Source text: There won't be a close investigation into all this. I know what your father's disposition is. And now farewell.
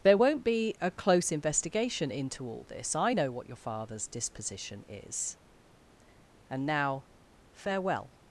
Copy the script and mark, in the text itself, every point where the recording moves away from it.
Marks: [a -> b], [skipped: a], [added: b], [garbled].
There won't be a close investigation into all this. I know what your father's disposition is. And now farewell.